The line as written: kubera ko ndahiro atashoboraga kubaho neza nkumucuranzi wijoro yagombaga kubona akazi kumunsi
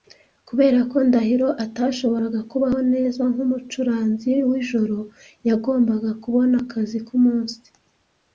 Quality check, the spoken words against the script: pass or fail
pass